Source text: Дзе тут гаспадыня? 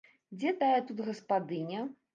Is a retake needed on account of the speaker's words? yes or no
yes